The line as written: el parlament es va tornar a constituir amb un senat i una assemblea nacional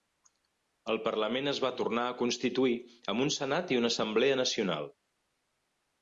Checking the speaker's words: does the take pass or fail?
pass